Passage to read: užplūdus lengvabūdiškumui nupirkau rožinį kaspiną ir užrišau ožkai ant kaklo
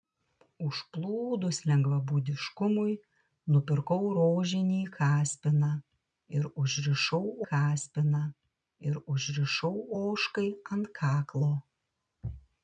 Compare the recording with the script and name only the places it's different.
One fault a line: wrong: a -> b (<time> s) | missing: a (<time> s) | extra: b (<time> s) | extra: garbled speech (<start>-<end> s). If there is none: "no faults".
extra: kaspiną ir užrišau (7.5 s)